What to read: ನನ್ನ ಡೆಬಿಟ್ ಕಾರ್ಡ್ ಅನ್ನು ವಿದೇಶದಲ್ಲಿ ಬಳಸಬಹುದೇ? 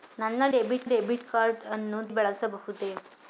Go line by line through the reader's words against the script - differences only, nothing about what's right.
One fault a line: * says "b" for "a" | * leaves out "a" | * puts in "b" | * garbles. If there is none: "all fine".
* puts in "ಡೆಬಿಟ್"
* leaves out "ವಿದೇಶದಲ್ಲಿ"